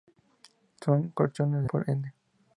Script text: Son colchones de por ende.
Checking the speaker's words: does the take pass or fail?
pass